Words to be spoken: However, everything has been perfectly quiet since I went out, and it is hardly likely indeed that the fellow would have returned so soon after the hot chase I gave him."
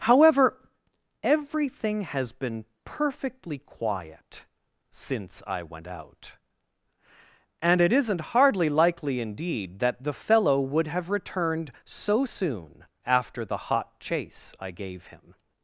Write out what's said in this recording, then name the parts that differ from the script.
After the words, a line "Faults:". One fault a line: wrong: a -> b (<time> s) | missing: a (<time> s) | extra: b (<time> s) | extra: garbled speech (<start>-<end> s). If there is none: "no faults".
However, everything has been perfectly quiet since I went out, and it isn't hardly likely indeed that the fellow would have returned so soon after the hot chase I gave him."
Faults:
wrong: is -> isn't (7.9 s)